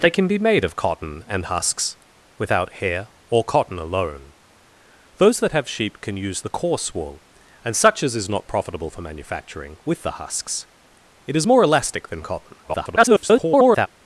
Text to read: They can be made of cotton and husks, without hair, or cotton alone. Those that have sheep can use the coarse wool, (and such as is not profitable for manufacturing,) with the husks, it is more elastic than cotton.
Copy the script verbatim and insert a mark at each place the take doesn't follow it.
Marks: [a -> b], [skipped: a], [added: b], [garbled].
They can be made of cotton and husks, without hair, or cotton alone. Those that have sheep can use the coarse wool, (and such as is not profitable for manufacturing,) with the husks, it is more elastic than cotton. [garbled]